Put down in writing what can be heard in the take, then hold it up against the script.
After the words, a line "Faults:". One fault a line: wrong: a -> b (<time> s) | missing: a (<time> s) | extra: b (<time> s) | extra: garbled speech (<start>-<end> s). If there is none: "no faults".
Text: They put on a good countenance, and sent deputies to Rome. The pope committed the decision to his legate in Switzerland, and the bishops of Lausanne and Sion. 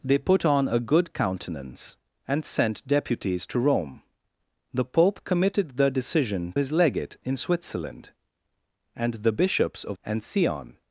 They put on a good countenance, and sent deputies to Rome. The pope committed the decision his legate in Switzerland, and the bishops of And Sion.
Faults:
missing: to (6.5 s)
missing: Lausanne (10.0 s)